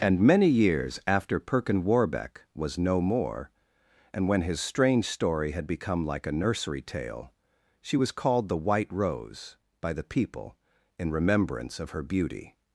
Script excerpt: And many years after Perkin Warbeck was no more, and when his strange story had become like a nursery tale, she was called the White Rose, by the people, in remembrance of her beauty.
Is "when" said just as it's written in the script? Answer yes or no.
yes